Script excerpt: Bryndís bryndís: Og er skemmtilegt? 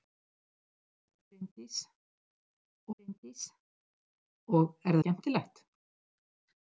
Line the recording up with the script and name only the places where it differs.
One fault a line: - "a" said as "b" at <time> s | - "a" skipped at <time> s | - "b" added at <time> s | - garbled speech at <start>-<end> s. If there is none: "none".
none